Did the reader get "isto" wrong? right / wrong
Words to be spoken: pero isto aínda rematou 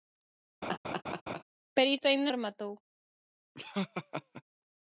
right